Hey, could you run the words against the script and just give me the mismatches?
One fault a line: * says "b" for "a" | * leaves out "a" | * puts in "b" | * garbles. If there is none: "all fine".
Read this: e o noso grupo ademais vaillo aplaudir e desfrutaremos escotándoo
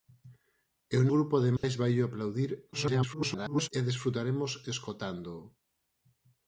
* leaves out "noso"
* garbles